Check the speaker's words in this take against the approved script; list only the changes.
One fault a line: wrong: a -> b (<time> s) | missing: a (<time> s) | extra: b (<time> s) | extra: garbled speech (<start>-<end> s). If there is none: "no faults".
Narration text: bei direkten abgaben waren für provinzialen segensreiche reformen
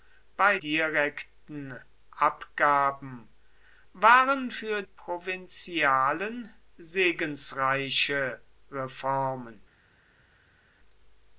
no faults